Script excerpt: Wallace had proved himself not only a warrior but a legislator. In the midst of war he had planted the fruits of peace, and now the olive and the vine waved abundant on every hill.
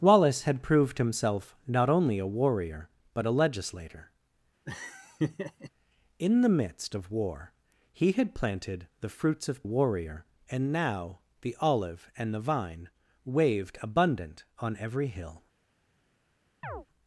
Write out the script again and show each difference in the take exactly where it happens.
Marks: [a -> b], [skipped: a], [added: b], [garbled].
Wallace had proved himself not only a warrior but a legislator. In the midst of war he had planted the fruits of [peace, -> warrior] and now the olive and the vine waved abundant on every hill.